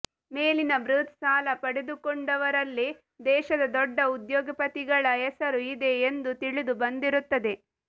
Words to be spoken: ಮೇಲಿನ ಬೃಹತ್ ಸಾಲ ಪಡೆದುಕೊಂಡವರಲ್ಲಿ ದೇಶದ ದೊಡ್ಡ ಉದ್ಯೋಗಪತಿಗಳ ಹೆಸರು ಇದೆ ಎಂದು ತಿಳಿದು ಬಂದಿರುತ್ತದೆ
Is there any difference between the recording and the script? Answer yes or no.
no